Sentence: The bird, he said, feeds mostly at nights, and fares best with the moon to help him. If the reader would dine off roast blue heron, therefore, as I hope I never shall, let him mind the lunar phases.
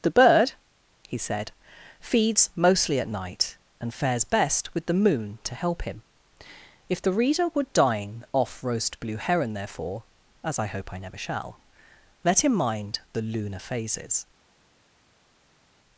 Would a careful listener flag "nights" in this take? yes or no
yes